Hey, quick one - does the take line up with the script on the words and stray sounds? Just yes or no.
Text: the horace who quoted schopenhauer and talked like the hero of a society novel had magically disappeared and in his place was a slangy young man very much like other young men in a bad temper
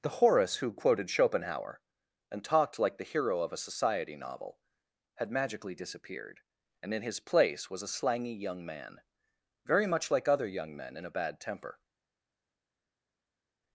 yes